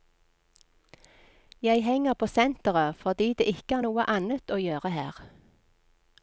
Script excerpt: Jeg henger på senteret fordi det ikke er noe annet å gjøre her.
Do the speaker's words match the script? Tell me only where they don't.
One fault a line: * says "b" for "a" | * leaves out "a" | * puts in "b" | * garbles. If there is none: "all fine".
all fine